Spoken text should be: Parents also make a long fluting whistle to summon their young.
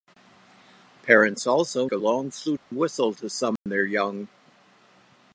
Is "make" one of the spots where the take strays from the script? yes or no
yes